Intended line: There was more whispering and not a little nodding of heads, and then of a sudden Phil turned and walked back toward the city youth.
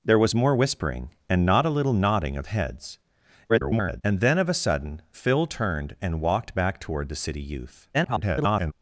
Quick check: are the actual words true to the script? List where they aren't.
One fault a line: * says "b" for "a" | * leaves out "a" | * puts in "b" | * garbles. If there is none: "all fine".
* garbles
* garbles